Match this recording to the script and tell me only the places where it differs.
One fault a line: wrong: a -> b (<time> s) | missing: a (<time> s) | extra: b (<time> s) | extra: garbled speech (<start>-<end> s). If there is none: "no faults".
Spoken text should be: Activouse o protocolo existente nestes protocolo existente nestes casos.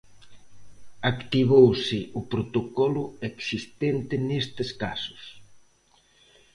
missing: protocolo existente nestes (4.7 s)